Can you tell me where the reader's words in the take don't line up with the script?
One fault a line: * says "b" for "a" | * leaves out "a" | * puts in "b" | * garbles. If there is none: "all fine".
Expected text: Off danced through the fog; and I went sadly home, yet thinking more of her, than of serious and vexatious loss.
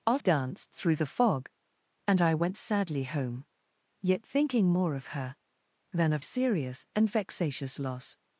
all fine